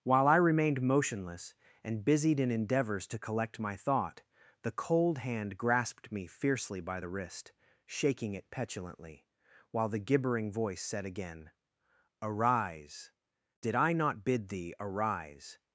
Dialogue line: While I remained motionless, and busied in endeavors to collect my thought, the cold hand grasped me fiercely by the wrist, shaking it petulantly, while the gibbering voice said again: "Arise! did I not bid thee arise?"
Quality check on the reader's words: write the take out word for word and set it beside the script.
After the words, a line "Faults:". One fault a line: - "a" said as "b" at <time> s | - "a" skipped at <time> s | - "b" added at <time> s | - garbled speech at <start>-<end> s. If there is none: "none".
While I remained motionless, and busied in endeavors to collect my thought, the cold hand grasped me fiercely by the wrist, shaking it petulantly, while the gibbering voice said again: "Arise! did I not bid thee arise?"
Faults:
none